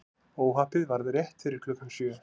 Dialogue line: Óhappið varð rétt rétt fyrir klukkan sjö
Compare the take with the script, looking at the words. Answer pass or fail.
fail